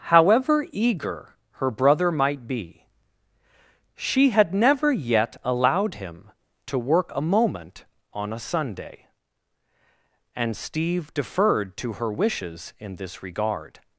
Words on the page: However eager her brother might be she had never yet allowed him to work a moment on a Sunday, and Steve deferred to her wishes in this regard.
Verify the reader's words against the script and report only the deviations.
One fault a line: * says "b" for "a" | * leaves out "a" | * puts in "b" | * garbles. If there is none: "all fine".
all fine